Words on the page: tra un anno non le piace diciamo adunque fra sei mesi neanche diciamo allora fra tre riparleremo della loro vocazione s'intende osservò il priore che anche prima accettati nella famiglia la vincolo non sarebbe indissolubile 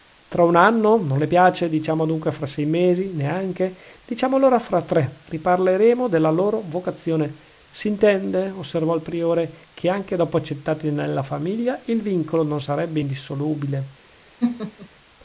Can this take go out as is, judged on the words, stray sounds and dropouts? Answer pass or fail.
fail